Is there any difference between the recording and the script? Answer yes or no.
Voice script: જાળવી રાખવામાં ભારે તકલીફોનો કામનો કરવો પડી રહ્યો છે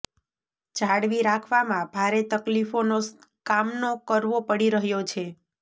no